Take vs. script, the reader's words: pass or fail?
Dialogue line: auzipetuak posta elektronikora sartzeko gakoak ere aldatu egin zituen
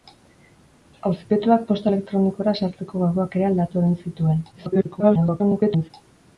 fail